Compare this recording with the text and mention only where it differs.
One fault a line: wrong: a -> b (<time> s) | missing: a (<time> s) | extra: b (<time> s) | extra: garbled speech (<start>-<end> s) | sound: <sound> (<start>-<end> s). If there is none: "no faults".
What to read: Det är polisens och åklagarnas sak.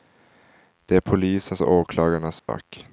sound: dropout (2.4-2.5 s)